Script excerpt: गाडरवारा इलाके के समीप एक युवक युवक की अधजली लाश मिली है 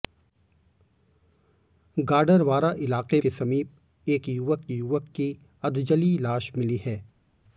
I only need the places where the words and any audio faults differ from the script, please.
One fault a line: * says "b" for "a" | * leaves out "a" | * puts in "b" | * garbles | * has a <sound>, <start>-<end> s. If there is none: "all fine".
all fine